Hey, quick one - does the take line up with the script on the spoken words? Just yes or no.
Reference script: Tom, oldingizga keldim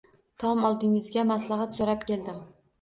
no